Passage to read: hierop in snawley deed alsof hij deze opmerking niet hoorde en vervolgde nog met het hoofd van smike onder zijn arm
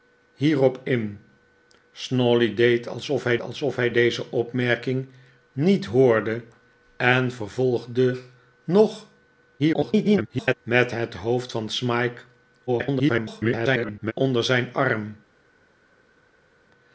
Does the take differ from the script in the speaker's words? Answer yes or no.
yes